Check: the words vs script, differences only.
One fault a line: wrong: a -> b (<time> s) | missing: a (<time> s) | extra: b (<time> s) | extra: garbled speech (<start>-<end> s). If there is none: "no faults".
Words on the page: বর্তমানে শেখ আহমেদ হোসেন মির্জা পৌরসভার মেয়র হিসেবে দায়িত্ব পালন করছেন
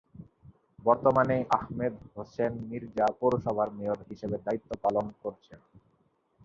missing: শেখ (1.4 s)